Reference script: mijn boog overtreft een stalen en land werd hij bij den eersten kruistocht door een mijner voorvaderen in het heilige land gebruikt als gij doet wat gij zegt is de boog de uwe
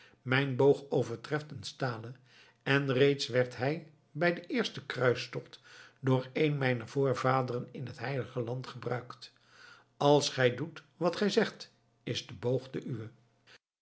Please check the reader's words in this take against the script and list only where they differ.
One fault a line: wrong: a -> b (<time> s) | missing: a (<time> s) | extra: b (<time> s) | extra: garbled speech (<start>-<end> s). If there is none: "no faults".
wrong: land -> reeds (2.9 s)